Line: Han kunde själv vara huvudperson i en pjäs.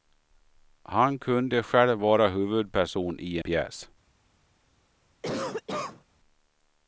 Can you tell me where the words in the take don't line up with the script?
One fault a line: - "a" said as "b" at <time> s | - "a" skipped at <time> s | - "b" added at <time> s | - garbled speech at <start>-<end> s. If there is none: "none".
- "en" skipped at 3.4 s